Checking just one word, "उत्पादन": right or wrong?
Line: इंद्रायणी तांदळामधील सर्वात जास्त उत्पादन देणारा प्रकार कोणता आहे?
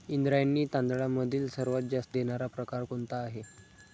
wrong